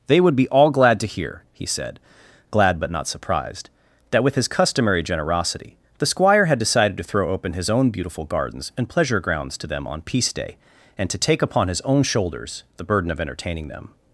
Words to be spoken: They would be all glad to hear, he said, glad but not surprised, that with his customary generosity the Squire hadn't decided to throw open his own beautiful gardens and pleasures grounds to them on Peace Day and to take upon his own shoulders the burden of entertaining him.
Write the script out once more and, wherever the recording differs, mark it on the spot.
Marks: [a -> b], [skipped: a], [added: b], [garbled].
They would be all glad to hear, he said, glad but not surprised, that with his customary generosity the Squire [hadn't -> had] decided to throw open his own beautiful gardens and [pleasures -> pleasure] grounds to them on Peace Day and to take upon his own shoulders the burden of entertaining [him. -> them]